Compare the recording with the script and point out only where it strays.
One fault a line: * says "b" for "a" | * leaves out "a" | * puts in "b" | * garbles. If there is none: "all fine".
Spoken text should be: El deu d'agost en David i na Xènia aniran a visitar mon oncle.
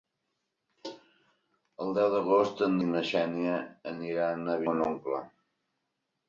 * leaves out "David"
* leaves out "visitar"